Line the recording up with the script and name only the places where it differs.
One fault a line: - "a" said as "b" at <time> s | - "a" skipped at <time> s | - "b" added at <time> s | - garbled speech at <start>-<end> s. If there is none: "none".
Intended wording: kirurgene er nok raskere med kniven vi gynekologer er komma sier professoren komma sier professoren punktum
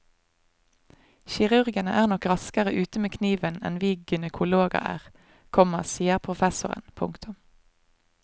- "ute" added at 2.8 s
- "enn" added at 3.7 s
- "komma sier professoren" skipped at 6.9 s